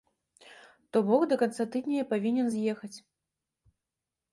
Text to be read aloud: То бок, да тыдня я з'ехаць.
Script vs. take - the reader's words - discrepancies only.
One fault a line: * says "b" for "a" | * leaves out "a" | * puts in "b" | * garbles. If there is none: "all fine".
* puts in "канца"
* puts in "павінен"